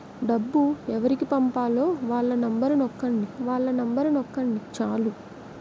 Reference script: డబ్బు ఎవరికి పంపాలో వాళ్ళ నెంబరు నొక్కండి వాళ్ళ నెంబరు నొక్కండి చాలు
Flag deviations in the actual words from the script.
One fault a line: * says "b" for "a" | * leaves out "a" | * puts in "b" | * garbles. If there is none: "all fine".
all fine